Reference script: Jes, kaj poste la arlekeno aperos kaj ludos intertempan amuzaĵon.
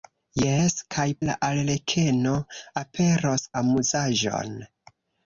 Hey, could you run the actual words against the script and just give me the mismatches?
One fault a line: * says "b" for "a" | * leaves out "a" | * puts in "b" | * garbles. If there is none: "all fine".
* leaves out "poste"
* leaves out "kaj ludos intertempan"